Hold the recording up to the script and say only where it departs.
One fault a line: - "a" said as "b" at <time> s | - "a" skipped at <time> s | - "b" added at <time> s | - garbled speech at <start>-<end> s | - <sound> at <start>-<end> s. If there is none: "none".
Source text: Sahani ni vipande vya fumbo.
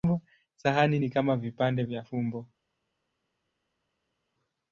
- "kama" added at 1.1 s